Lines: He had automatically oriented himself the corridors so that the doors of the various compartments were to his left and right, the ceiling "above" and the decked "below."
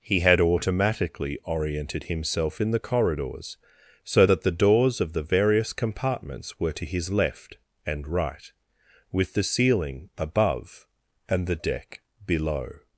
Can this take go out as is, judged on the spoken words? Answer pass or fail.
fail